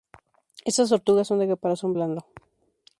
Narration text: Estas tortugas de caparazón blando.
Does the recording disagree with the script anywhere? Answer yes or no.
yes